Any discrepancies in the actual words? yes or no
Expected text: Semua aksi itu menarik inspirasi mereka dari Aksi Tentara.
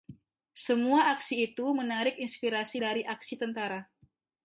yes